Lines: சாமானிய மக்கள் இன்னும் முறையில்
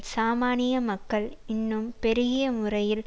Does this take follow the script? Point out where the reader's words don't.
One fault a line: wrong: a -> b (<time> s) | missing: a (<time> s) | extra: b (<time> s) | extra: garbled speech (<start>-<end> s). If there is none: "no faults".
extra: பெருகிய (2.0 s)